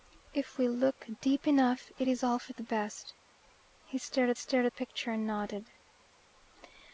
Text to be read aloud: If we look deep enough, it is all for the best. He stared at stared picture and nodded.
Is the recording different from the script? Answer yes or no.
no